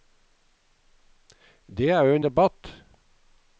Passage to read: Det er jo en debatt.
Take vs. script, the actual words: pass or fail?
pass